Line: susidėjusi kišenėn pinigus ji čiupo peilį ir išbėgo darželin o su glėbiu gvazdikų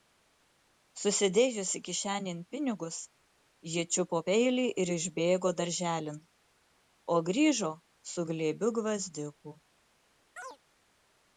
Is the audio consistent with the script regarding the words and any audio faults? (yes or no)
no